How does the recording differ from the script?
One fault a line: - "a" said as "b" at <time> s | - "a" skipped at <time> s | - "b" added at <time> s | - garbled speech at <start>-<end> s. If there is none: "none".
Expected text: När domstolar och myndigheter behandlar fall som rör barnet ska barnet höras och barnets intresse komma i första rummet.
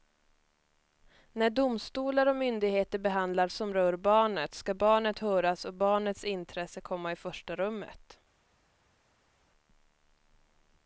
- "fall" skipped at 3.5 s